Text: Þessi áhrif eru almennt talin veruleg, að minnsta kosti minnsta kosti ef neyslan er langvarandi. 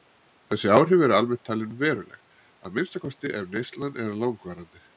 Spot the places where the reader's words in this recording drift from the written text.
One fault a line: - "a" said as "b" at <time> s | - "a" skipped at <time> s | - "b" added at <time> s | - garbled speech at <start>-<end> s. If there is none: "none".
- "minnsta kosti" skipped at 3.3 s